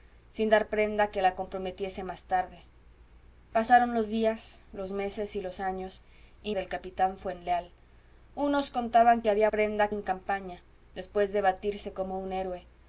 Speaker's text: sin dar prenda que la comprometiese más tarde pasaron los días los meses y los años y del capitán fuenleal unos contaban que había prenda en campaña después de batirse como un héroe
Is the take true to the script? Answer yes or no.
yes